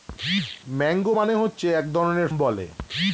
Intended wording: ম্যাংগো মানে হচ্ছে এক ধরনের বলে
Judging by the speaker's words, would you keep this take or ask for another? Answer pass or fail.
pass